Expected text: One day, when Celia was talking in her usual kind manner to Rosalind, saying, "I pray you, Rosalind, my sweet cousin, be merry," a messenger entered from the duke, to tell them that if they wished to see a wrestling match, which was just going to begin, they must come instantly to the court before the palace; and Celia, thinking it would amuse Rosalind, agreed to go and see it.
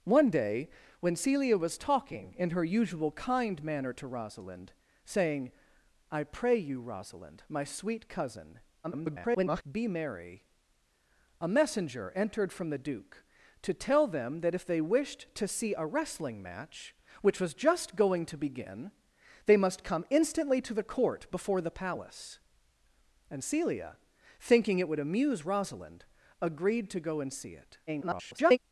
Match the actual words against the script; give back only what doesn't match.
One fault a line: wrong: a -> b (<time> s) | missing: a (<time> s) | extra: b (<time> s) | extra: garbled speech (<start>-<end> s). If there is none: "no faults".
extra: garbled speech (8.8-9.6 s)
extra: garbled speech (27.9-28.6 s)